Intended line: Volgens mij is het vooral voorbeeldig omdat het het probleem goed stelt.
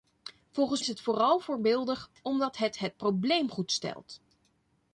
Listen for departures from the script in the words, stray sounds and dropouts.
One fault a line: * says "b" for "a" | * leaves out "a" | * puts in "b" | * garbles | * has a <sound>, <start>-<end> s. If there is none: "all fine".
* leaves out "mij"